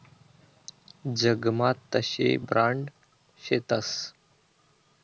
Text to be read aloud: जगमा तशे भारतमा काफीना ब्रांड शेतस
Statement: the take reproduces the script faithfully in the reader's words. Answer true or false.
false